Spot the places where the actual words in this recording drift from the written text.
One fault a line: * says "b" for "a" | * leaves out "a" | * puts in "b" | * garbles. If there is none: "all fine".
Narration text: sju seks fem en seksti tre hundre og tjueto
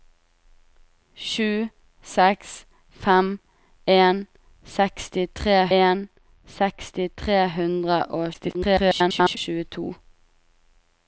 * puts in "en seksti tre"
* garbles